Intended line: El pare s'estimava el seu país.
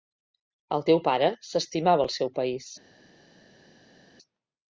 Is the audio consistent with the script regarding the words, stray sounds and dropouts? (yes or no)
no